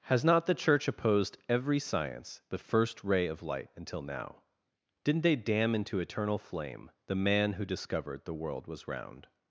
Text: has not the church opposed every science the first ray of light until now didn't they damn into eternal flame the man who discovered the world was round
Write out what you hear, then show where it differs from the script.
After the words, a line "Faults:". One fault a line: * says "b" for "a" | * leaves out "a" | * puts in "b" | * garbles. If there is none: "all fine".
has not the church opposed every science the first ray of light until now didn't they damn into eternal flame the man who discovered the world was round
Faults:
all fine